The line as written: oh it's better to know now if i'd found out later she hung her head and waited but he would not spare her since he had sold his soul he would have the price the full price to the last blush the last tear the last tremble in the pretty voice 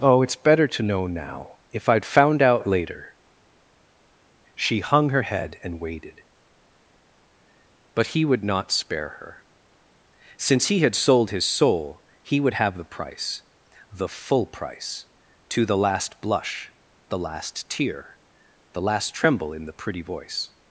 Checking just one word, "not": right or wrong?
right